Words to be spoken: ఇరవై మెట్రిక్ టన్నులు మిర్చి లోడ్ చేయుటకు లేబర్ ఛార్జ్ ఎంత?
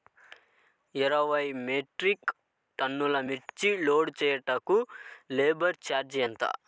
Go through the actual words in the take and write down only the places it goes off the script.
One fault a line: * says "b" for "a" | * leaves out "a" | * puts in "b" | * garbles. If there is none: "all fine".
all fine